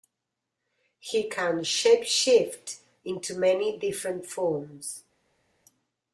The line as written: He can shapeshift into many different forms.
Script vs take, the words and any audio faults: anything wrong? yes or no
no